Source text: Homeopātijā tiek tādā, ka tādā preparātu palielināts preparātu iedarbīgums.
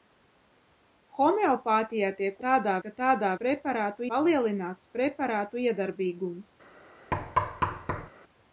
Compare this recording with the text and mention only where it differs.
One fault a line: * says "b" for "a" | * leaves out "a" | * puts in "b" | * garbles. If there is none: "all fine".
all fine